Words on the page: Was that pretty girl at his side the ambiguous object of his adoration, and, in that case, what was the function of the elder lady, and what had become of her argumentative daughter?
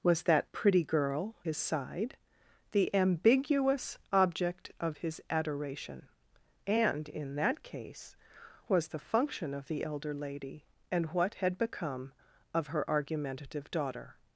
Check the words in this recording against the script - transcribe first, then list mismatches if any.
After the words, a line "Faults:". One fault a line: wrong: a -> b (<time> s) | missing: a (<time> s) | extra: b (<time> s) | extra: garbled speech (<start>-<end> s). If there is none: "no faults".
Was that pretty girl his side the ambiguous object of his adoration, and, in that case, was the function of the elder lady, and what had become of her argumentative daughter?
Faults:
missing: at (1.4 s)
missing: what (8.2 s)